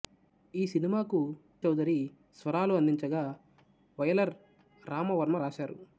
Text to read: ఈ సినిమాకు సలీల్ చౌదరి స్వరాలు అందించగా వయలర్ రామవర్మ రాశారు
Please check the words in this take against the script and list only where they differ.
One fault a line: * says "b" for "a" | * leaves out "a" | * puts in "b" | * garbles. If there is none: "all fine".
* leaves out "సలీల్"